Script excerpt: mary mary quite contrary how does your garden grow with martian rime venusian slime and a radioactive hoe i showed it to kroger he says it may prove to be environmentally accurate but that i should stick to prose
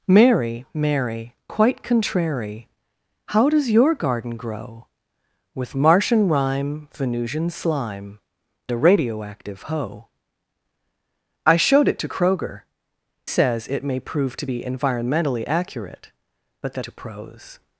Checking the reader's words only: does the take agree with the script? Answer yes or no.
no